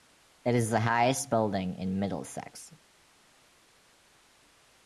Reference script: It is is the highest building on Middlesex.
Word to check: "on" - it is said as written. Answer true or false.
false